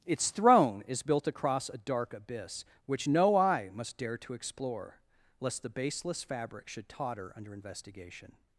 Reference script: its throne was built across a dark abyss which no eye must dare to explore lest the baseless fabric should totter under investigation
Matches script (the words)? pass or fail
fail